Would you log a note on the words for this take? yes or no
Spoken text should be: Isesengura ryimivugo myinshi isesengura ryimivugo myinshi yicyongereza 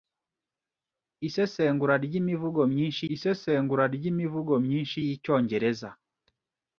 no